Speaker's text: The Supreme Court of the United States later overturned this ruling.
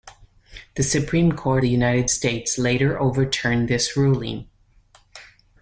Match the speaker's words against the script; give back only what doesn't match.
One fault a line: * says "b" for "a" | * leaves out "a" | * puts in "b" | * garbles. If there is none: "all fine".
* leaves out "of"